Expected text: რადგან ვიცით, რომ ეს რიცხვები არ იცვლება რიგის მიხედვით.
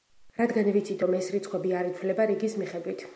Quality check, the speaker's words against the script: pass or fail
pass